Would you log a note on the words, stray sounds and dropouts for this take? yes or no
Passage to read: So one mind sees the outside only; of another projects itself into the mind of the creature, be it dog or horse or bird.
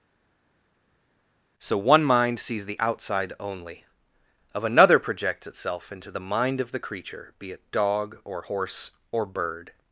no